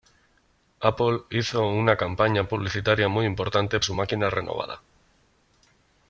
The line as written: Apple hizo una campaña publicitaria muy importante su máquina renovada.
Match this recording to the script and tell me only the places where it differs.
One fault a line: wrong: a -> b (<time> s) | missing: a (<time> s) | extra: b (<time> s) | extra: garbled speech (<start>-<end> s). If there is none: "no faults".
no faults